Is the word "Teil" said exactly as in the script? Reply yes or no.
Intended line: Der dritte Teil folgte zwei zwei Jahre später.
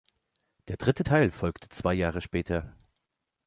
yes